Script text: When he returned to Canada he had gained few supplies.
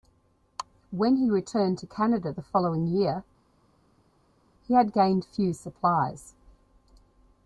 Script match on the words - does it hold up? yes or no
no